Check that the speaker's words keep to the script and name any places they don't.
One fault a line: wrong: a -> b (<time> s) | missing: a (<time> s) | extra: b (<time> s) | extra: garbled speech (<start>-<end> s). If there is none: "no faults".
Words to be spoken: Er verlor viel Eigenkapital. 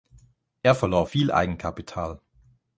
no faults